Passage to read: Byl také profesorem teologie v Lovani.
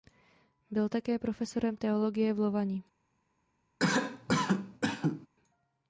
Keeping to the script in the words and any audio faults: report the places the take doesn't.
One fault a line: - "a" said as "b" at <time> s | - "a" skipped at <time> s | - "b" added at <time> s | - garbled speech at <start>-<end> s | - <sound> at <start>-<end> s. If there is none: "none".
- cough at 3.8-5.3 s